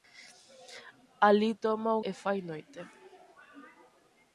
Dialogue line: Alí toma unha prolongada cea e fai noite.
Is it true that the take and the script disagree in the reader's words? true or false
true